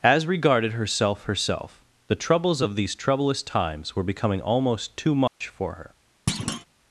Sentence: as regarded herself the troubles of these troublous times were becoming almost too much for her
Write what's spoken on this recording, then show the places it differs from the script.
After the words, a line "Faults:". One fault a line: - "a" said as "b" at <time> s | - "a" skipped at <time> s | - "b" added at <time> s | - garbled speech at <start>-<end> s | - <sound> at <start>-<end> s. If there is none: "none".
as regarded herself herself the troubles of these troublous times were becoming almost too much for her
Faults:
- "herself" added at 1.2 s
- dropout at 5.3-5.4 s
- thud at 6.3-6.7 s